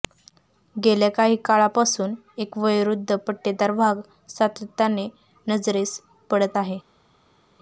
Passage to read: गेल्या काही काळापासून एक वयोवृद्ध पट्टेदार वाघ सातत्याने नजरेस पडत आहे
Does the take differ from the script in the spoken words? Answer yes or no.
no